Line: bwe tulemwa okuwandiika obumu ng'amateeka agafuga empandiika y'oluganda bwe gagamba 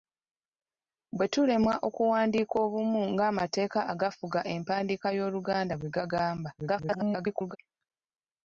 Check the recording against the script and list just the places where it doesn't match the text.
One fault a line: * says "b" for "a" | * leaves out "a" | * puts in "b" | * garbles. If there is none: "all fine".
* garbles